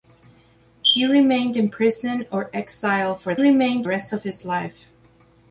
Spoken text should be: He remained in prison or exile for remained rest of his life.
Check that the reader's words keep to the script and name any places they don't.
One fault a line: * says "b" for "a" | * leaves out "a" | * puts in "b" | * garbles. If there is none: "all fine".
all fine